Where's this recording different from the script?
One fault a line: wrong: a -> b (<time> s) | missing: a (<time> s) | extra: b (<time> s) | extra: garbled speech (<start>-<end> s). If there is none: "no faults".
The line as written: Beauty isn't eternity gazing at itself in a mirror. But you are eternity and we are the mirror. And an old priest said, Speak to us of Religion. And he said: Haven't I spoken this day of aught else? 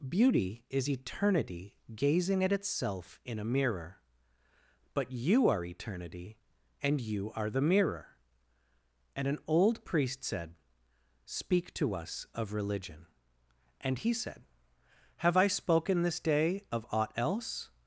wrong: isn't -> is (0.7 s)
wrong: we -> you (7.0 s)
wrong: Haven't -> Have (15.2 s)